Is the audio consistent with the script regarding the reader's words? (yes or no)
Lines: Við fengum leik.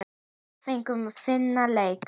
no